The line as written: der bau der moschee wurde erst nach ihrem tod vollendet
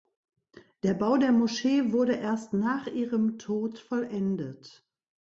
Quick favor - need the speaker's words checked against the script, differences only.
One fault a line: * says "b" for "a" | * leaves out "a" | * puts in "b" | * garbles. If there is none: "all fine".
all fine